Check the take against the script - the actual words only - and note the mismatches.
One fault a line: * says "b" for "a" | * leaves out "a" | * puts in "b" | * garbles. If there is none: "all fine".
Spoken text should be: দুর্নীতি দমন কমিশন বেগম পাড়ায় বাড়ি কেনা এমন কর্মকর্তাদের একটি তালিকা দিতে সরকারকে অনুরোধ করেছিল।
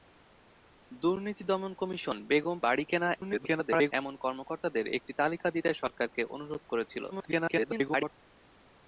* leaves out "পাড়ায়"
* garbles
* garbles